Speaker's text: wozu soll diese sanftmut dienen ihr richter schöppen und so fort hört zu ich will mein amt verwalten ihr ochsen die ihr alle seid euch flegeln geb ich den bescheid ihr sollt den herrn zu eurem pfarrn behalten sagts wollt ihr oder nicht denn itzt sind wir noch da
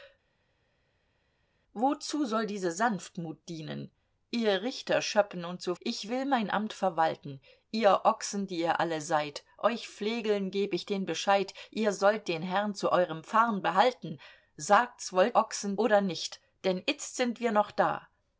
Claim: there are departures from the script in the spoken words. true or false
true